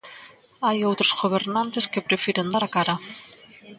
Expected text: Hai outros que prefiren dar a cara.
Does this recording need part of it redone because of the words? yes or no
yes